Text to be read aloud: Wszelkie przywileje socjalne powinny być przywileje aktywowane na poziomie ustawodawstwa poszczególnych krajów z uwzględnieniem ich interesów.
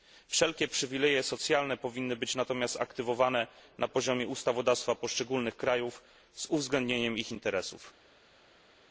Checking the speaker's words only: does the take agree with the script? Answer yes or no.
no